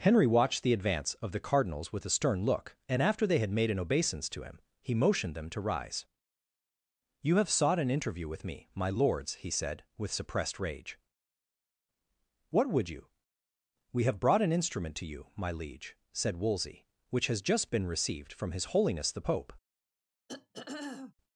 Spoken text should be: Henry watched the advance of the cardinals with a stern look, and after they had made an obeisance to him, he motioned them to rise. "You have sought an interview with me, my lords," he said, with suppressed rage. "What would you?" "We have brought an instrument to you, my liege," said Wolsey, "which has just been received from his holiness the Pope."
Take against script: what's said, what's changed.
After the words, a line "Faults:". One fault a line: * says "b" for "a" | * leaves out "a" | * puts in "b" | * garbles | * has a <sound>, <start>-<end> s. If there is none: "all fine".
Henry watched the advance of the cardinals with a stern look, and after they had made an obeisance to him, he motioned them to rise. "You have sought an interview with me, my lords," he said, with suppressed rage. "What would you?" "We have brought an instrument to you, my liege," said Wolsey, "which has just been received from his holiness the Pope."
Faults:
* has a throat clearing, 20.3-21.1 s